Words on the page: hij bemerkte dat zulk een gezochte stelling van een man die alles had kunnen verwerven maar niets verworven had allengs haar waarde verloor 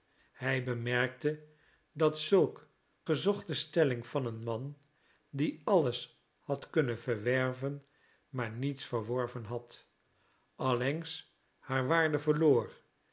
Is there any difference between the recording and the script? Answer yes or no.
yes